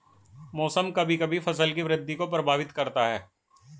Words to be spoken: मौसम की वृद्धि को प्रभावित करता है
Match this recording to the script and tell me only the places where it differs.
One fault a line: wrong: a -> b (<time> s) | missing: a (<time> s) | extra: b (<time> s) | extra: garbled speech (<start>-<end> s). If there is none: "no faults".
extra: कभी कभी फसल (0.9 s)